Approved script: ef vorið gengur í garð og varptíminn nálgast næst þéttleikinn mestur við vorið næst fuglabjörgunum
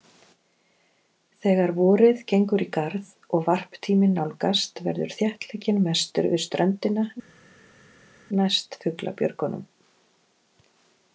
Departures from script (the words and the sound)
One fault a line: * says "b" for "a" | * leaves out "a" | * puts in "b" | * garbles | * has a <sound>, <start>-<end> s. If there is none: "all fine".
* says "þegar" for "ef"
* says "verður" for "næst"
* says "ströndina" for "vorið"